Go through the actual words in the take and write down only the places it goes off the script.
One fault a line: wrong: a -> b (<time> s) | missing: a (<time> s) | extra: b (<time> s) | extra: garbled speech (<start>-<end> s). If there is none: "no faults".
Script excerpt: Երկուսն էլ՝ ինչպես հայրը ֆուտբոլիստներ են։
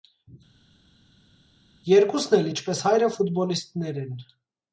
no faults